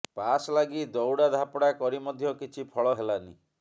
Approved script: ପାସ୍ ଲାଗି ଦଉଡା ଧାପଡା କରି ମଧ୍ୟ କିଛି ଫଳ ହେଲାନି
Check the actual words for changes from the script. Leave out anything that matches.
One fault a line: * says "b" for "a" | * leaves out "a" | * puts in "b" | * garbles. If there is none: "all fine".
all fine